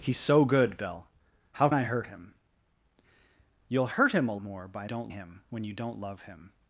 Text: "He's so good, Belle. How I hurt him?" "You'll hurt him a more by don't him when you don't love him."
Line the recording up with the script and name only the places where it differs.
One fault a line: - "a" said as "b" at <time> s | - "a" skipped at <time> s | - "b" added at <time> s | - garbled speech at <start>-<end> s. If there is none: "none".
none